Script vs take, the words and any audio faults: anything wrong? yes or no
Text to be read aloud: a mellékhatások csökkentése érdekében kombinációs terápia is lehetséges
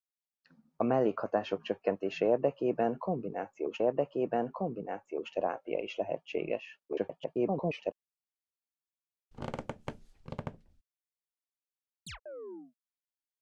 yes